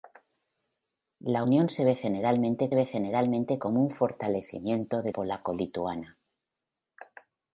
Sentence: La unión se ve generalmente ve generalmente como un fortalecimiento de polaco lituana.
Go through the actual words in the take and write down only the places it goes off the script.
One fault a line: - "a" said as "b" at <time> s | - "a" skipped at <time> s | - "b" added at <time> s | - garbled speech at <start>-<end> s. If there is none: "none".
none